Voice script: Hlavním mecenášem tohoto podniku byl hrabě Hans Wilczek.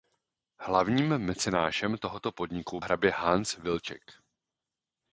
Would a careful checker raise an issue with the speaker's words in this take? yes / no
yes